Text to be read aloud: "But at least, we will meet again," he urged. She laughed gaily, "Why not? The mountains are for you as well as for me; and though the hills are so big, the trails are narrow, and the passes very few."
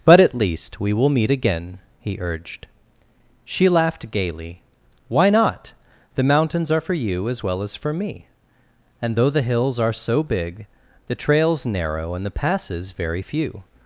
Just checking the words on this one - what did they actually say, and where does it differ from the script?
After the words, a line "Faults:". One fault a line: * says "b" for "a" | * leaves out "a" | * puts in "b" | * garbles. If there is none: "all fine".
"But at least, we will meet again," he urged. She laughed gaily, "Why not? The mountains are for you as well as for me; and though the hills are so big, the trails narrow, and the passes very few."
Faults:
* leaves out "are"